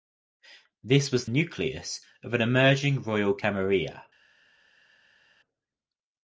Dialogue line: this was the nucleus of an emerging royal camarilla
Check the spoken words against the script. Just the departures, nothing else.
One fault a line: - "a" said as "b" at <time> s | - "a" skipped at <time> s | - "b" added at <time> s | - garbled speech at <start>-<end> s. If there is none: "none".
- "the" skipped at 1.3 s